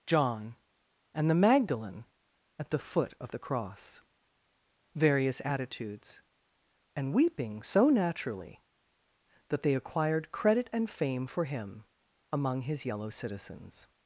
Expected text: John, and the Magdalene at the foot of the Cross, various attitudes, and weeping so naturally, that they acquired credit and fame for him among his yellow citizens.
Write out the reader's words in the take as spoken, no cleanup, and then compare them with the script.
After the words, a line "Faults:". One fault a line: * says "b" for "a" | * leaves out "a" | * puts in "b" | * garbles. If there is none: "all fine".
John, and the Magdalene at the foot of the Cross, various attitudes, and weeping so naturally, that they acquired credit and fame for him among his yellow citizens.
Faults:
all fine